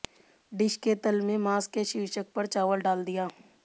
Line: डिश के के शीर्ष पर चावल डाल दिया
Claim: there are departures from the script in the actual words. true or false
true